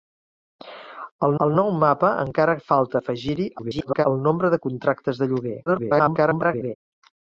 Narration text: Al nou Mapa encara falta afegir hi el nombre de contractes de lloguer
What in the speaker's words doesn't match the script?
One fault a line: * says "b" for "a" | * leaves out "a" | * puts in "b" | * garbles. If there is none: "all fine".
* puts in "al"
* garbles
* garbles